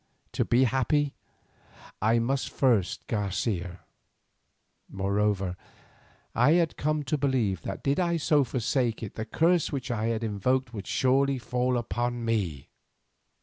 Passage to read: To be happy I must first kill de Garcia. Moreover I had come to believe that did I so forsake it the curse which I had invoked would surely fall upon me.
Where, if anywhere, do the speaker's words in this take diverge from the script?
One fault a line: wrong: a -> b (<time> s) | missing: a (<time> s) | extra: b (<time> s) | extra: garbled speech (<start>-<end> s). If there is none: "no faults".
missing: kill de (3.1 s)